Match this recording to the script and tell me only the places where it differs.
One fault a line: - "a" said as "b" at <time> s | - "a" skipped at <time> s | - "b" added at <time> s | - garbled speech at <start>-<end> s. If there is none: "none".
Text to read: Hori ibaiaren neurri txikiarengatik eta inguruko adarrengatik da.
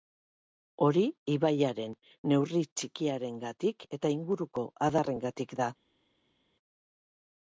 none